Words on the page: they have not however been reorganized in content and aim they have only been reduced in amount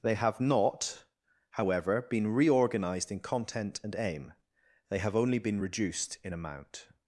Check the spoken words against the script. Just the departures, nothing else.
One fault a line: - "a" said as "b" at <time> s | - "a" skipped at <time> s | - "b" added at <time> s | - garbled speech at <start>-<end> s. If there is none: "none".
none